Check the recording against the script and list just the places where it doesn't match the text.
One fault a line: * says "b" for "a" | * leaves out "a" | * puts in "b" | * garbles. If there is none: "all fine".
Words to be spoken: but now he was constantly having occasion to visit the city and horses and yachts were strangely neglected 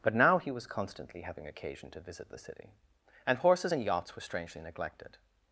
all fine